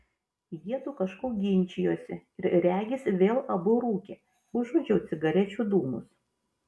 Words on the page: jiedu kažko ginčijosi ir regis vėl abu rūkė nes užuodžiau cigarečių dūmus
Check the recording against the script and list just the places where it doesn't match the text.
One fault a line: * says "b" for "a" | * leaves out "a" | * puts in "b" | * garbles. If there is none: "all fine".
* leaves out "nes"